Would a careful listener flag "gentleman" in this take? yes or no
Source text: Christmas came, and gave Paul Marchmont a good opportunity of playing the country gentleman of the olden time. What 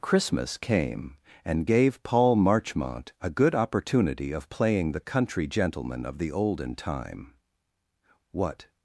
no